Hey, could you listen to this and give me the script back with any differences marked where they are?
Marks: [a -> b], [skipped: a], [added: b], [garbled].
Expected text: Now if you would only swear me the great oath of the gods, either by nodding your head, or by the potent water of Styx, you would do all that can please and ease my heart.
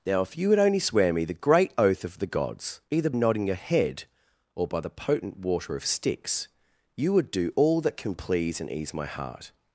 Now if you would only swear me the great oath of the gods, either [skipped: by] nodding your head, or by the potent water of Styx, you would do all that can please and ease my heart.